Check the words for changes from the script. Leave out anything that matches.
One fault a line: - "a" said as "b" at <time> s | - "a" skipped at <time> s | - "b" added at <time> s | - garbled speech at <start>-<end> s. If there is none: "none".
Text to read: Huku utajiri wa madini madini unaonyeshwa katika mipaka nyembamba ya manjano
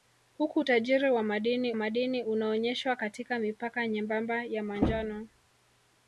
none